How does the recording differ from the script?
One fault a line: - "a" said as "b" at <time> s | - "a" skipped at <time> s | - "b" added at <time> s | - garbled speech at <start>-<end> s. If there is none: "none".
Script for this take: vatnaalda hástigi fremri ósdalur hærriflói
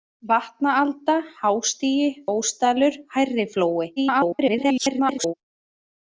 - "fremri" skipped at 2.1 s
- garbled speech at 4.0-5.3 s